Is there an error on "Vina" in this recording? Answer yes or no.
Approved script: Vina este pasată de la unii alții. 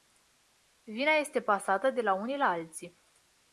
no